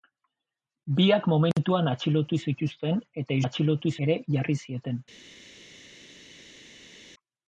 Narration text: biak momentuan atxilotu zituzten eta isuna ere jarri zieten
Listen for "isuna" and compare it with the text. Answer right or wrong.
wrong